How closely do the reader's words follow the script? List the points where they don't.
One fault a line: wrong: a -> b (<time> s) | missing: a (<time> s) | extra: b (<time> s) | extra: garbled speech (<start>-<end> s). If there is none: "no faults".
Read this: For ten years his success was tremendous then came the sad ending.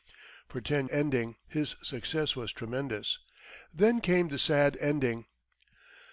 wrong: years -> ending (0.9 s)